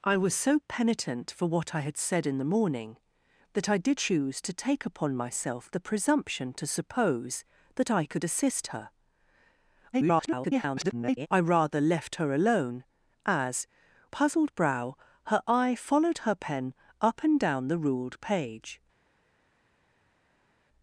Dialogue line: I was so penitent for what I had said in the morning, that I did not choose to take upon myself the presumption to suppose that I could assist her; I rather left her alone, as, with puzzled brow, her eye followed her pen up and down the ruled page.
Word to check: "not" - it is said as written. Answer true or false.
false